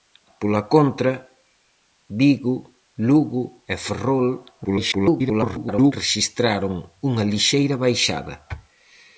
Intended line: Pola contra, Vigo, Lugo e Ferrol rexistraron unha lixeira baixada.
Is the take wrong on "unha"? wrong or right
right